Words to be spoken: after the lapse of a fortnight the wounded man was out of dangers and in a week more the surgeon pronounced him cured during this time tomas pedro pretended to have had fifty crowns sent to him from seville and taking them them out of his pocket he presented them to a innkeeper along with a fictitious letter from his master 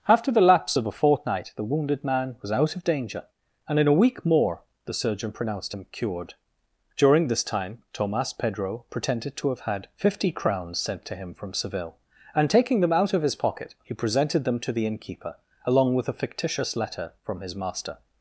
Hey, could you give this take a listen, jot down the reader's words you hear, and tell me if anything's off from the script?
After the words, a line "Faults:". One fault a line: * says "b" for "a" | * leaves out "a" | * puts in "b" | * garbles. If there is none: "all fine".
after the lapse of a fortnight the wounded man was out of danger and in a week more the surgeon pronounced him cured during this time tomas pedro pretended to have had fifty crowns sent to him from seville and taking them out of his pocket he presented them to the innkeeper along with a fictitious letter from his master
Faults:
* says "danger" for "dangers"
* leaves out "them"
* says "the" for "a"